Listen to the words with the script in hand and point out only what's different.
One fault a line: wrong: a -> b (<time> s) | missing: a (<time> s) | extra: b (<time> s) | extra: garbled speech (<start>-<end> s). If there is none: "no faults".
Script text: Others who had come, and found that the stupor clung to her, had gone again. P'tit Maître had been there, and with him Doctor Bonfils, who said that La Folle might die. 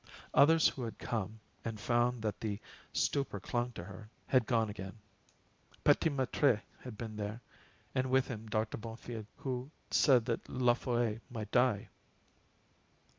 no faults